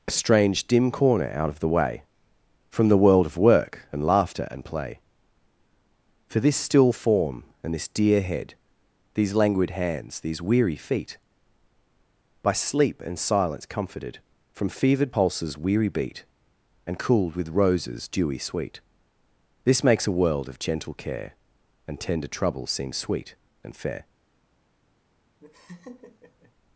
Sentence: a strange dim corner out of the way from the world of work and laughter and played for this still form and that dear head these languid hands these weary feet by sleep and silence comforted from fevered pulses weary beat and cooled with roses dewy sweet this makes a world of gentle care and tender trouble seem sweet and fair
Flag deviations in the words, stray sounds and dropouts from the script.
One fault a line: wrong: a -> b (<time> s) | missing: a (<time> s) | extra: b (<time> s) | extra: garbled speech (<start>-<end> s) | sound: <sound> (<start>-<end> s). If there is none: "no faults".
wrong: played -> play (4.6 s)
wrong: that -> this (7.7 s)
sound: laugh (25.4-26.5 s)